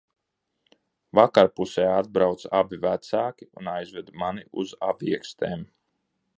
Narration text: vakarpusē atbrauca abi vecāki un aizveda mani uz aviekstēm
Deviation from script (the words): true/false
false